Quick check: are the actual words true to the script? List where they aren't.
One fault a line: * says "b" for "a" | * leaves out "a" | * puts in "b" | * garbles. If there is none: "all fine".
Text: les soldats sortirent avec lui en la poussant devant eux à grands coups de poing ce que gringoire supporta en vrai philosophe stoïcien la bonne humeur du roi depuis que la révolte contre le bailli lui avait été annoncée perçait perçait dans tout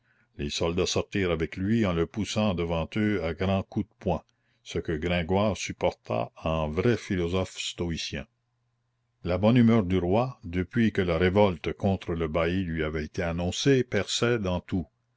* says "le" for "la"
* leaves out "perçait"